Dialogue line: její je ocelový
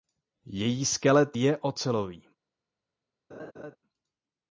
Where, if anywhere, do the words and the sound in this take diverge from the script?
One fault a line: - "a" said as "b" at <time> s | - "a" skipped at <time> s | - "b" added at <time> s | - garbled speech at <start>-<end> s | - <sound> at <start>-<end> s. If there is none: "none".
- "skelet" added at 0.8 s
- laugh at 3.3-3.8 s